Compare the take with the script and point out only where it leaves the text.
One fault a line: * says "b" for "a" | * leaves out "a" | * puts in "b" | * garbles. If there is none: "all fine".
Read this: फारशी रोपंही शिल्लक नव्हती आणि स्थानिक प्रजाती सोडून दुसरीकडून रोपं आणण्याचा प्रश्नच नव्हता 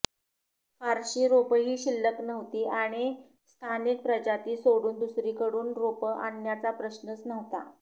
all fine